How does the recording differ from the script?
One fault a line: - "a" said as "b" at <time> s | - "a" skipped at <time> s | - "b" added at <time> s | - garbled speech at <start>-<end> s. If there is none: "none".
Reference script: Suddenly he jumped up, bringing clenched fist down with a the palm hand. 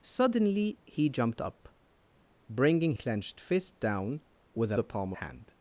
none